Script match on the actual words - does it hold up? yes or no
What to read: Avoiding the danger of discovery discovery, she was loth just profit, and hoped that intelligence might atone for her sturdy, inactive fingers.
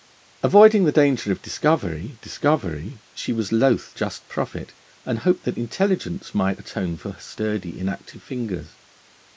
yes